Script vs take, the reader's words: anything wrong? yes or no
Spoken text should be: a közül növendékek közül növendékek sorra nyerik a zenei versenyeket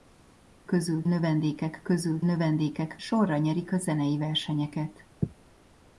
no